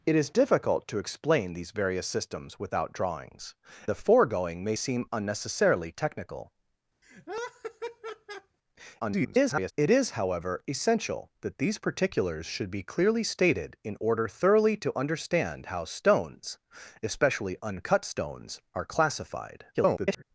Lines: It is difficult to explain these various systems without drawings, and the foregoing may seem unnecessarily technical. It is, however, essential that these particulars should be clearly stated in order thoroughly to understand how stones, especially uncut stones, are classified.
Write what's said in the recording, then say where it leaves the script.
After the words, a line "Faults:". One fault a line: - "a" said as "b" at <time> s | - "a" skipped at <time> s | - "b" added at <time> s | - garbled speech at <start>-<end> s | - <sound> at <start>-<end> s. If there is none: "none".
It is difficult to explain these various systems without drawings, the foregoing may seem unnecessarily technical. [garbled] It is, however, essential that these particulars should be clearly stated in order thoroughly to understand how stones, especially uncut stones, are classified. [garbled]
Faults:
- "and" skipped at 3.5 s
- laugh at 7.0-8.6 s
- garbled speech at 9.0-9.7 s
- garbled speech at 19.7-20.2 s